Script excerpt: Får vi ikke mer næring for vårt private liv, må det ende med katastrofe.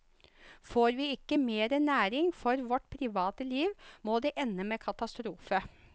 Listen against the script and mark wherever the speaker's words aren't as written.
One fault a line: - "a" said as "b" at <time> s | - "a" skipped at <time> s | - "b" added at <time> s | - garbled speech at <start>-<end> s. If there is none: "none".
none